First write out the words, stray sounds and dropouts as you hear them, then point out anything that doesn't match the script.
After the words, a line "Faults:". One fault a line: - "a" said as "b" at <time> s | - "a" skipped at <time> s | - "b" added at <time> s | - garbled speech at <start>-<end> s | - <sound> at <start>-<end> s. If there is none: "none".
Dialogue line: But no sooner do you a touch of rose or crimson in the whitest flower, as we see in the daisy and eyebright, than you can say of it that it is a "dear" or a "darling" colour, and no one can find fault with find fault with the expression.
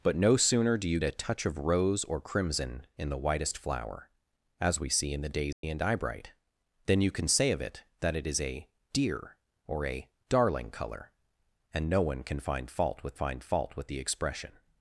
But no sooner do you a touch of rose or crimson in the whitest flower, as we see in the daisy and eyebright, than you can say of it that it is a "dear" or a "darling" colour, and no one can find fault with find fault with the expression.
Faults:
- dropout at 5.5-5.6 s